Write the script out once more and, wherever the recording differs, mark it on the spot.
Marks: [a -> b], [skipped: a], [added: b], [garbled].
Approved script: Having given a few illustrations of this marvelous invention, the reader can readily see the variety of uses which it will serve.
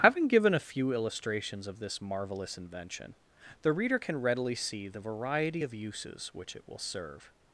Having given a few illustrations of this marvelous invention, the reader can readily see the variety of uses which it will serve.